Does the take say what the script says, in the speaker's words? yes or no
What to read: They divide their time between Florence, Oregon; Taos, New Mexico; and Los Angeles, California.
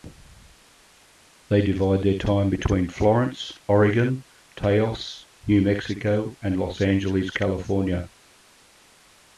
yes